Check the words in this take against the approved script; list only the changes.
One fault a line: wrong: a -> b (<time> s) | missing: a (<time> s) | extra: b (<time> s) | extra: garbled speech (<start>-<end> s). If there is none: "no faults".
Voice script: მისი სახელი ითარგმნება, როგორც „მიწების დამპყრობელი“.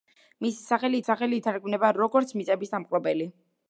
extra: სახელი (1.1 s)